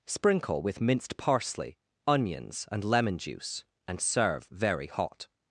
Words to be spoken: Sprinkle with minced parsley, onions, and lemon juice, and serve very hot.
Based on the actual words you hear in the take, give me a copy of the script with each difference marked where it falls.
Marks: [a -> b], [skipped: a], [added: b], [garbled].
Sprinkle with minced parsley, onions, and lemon juice, and serve very hot.